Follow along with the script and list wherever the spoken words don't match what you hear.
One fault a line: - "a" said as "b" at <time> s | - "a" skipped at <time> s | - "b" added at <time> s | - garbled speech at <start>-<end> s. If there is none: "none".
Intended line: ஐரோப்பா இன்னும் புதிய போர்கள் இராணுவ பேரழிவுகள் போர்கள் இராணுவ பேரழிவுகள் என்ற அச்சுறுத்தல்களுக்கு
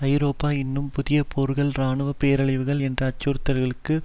- "போர்கள் இராணுவ பேரழிவுகள்" skipped at 2.8 s